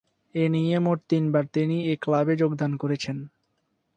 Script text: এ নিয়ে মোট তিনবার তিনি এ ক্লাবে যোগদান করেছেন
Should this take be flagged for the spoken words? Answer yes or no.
no